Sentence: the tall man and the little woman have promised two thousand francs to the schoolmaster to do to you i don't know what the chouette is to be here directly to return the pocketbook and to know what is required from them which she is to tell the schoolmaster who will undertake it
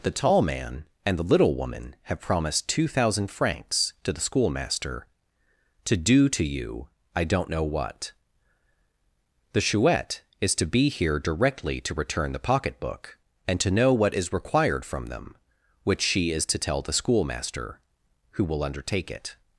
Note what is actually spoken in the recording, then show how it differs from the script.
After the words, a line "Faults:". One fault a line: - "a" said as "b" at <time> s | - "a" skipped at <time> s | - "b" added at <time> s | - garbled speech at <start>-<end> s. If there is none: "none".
the tall man and the little woman have promised two thousand francs to the schoolmaster to do to you i don't know what the chouette is to be here directly to return the pocketbook and to know what is required from them which she is to tell the schoolmaster who will undertake it
Faults:
none